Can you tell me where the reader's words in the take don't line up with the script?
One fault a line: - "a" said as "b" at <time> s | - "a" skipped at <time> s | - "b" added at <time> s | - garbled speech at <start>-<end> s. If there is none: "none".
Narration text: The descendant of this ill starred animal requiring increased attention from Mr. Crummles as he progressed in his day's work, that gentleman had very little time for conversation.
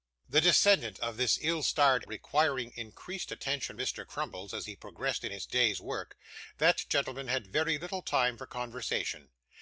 - "animal" skipped at 2.0 s
- "from" skipped at 3.8 s